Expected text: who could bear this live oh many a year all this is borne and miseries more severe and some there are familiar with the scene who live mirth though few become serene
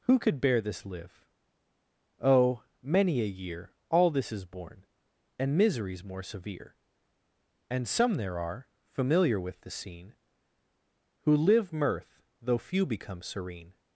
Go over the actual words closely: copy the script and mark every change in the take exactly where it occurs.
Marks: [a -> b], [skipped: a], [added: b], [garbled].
who could bear this live oh many a year all this is borne and miseries more severe and some there are familiar with the scene who live mirth though few become serene